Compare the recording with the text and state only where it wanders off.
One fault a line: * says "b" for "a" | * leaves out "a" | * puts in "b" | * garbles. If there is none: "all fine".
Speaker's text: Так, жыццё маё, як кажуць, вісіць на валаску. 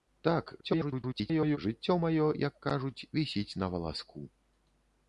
* garbles